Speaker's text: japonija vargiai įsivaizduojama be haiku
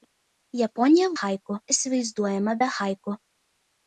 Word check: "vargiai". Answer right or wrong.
wrong